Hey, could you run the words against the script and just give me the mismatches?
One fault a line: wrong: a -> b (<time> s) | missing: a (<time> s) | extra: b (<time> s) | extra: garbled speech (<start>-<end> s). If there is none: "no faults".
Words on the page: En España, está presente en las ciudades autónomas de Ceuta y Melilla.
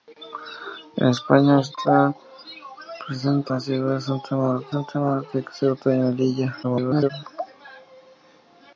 missing: en (3.5 s)
extra: autónomas (4.7 s)
extra: garbled speech (6.6-7.1 s)